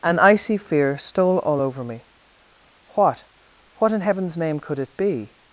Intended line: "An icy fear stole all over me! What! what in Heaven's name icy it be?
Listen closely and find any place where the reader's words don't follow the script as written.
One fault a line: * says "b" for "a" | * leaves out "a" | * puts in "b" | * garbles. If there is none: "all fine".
* says "could" for "icy"